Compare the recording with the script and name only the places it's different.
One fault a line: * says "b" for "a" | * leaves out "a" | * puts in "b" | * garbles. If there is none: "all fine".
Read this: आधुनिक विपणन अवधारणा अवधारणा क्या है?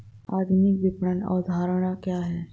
* leaves out "अवधारणा"